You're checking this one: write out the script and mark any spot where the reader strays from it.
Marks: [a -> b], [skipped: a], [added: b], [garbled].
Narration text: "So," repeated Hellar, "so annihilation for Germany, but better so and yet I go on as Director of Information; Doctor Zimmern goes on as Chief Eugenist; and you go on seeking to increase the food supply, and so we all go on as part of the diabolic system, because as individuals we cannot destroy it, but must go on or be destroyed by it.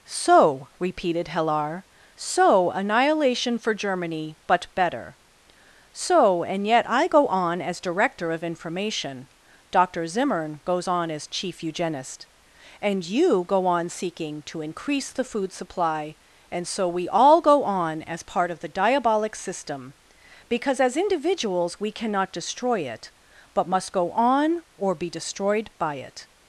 "So," repeated Hellar, "so annihilation for Germany, but better so and yet I go on as Director of Information; Doctor Zimmern goes on as Chief Eugenist; and you go on seeking to increase the food supply, and so we all go on as part of the diabolic system, because as individuals we cannot destroy it, but must go on or be destroyed by it.